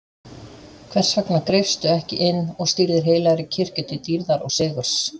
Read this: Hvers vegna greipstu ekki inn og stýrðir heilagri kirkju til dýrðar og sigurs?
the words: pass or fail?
pass